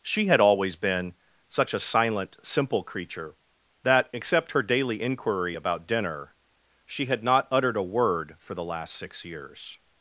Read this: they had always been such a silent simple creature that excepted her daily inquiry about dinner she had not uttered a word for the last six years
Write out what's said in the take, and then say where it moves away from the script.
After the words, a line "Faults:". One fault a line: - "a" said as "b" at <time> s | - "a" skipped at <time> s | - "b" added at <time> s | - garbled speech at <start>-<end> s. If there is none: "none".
she had always been such a silent simple creature that except her daily inquiry about dinner she had not uttered a word for the last six years
Faults:
- "they" said as "she" at 0.0 s
- "excepted" said as "except" at 4.1 s